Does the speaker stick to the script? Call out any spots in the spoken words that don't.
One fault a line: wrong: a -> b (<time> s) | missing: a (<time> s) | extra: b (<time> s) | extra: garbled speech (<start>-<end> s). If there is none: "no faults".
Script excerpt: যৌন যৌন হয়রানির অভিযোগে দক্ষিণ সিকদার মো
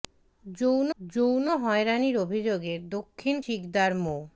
no faults